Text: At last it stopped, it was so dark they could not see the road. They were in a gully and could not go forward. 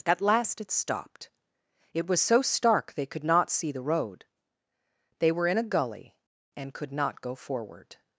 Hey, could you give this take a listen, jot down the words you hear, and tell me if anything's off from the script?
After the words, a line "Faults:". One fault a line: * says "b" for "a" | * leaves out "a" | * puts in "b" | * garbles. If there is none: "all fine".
At last it stopped, it was so stark they could not see the road. They were in a gully and could not go forward.
Faults:
* says "stark" for "dark"